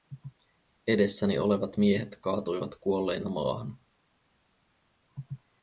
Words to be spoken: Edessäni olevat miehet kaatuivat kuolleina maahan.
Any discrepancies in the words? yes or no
no